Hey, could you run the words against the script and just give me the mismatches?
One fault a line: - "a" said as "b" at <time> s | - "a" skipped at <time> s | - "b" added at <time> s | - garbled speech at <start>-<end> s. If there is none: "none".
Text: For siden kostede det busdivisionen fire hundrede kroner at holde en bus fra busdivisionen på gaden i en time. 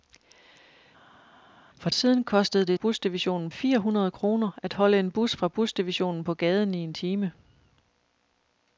none